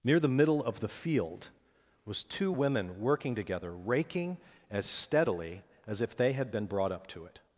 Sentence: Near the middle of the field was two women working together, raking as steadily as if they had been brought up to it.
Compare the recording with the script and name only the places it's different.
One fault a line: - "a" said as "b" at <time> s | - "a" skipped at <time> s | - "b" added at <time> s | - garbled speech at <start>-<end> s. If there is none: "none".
none